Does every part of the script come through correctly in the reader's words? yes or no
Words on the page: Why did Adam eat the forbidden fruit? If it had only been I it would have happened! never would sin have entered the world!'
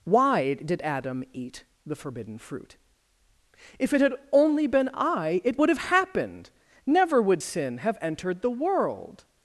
yes